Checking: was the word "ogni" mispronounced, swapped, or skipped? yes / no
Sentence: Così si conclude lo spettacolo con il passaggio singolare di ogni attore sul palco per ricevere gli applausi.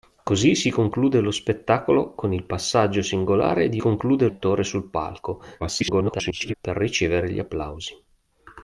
yes